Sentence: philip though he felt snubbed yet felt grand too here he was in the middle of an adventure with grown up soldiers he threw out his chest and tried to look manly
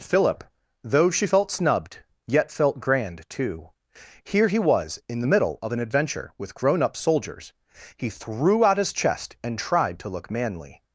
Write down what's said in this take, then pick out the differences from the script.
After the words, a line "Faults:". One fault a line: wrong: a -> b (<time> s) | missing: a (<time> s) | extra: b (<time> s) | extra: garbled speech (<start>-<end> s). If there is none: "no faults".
philip though she felt snubbed yet felt grand too here he was in the middle of an adventure with grown up soldiers he threw out his chest and tried to look manly
Faults:
wrong: he -> she (1.1 s)